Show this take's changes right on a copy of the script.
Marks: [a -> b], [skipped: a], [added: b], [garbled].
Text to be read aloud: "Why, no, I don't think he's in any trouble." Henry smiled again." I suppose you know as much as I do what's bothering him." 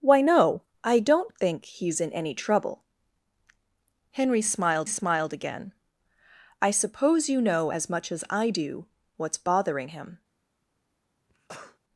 "Why, no, I don't think he's in any trouble." Henry smiled [added: smiled] again." I suppose you know as much as I do what's bothering him."